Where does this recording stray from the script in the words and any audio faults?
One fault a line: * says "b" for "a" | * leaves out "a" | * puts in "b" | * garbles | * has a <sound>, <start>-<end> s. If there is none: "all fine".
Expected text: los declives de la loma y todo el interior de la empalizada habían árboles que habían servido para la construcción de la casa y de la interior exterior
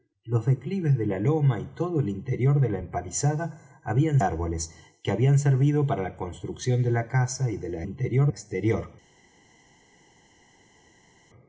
all fine